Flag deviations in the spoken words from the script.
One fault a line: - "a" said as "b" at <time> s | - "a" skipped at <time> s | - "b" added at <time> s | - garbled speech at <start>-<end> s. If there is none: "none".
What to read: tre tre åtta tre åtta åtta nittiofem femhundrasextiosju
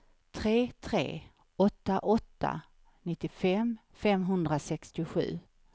- "tre åtta" skipped at 2.0 s